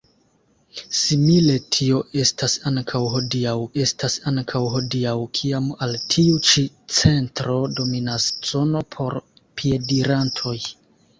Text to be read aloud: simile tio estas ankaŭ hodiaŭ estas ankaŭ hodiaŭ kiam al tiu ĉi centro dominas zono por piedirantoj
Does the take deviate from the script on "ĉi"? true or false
false